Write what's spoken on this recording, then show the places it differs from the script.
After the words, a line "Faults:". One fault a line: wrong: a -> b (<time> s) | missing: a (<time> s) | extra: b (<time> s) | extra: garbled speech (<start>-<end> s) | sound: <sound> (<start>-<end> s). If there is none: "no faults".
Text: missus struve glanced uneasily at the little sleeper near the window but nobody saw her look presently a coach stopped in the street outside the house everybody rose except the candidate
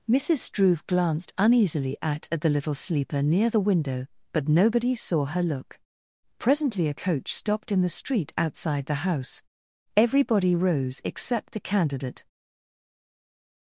missus struve glanced uneasily at at the little sleeper near the window but nobody saw her look presently a coach stopped in the street outside the house everybody rose except the candidate
Faults:
extra: at (2.3 s)